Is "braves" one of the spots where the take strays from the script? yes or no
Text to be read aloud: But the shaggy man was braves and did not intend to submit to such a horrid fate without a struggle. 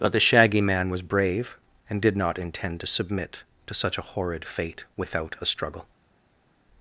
yes